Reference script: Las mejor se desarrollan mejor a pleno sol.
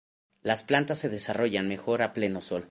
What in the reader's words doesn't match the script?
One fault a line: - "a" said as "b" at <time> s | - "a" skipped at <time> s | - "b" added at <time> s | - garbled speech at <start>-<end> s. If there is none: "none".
- "mejor" said as "plantas" at 0.6 s